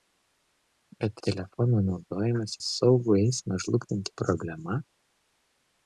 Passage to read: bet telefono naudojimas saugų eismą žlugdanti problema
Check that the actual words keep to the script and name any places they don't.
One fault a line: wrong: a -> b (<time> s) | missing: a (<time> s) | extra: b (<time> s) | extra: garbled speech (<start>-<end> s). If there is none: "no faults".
no faults